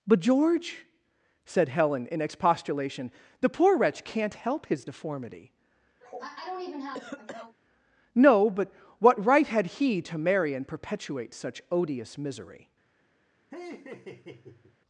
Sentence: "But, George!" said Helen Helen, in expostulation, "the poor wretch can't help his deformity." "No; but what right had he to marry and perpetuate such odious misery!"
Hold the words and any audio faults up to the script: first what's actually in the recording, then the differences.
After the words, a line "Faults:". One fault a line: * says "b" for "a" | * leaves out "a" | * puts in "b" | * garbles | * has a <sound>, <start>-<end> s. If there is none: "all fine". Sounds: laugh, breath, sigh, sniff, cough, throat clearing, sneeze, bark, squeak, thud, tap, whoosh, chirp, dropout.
"But, George!" said Helen, in expostulation, "the poor wretch can't help his deformity." "No; but what right had he to marry and perpetuate such odious misery!"
Faults:
* leaves out "Helen"
* has a cough, 6.0-7.6 s
* has a laugh, 13.5-14.8 s